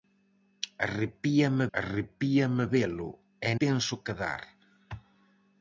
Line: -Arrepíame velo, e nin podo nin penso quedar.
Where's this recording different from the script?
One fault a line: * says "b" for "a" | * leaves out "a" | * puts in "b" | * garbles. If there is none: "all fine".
* puts in "arrepíame"
* leaves out "nin podo nin"